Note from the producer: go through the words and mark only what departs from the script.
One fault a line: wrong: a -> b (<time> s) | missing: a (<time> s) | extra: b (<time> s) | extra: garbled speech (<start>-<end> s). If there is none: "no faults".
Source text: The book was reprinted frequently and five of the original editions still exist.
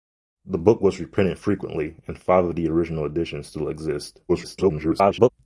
extra: garbled speech (4.3-5.3 s)